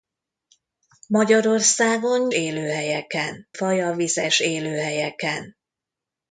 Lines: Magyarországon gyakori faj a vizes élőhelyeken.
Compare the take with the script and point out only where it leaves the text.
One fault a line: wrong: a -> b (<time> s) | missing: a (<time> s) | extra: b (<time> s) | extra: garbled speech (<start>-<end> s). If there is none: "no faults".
wrong: gyakori -> élőhelyeken (2.3 s)